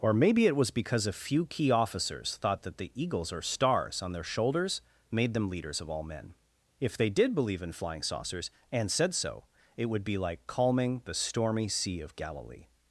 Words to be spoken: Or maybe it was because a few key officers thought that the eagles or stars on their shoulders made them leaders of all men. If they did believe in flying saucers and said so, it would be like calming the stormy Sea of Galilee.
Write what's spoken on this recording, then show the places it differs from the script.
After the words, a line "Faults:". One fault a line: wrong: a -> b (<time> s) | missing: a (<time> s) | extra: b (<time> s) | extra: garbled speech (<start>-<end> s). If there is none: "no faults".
Or maybe it was because a few key officers thought that the eagles or stars on their shoulders made them leaders of all men. If they did believe in flying saucers and said so, it would be like calming the stormy Sea of Galilee.
Faults:
no faults